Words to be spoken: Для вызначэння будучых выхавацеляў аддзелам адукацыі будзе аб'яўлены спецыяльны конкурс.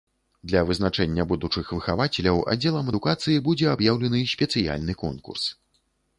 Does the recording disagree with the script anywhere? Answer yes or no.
no